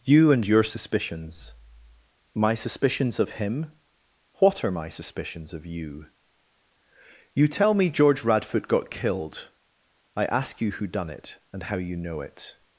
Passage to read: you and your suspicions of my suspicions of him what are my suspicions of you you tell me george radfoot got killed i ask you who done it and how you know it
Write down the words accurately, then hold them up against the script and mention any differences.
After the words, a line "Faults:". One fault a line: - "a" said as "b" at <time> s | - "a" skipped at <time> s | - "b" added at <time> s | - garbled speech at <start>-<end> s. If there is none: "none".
you and your suspicions my suspicions of him what are my suspicions of you you tell me george radfoot got killed i ask you who done it and how you know it
Faults:
- "of" skipped at 1.5 s